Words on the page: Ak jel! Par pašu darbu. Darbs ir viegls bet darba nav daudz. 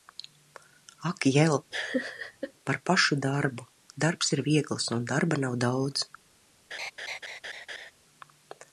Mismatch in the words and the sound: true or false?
true